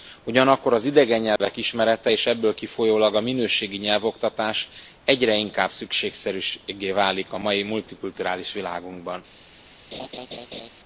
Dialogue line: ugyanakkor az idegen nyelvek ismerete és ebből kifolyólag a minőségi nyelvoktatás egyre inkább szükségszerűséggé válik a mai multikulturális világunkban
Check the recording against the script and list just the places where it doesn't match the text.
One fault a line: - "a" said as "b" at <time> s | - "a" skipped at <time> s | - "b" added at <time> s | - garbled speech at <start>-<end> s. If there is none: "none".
none